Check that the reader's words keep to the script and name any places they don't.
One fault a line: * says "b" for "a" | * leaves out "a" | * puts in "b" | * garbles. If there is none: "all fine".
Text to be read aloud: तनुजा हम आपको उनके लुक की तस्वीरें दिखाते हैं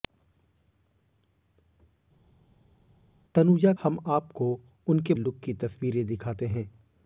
all fine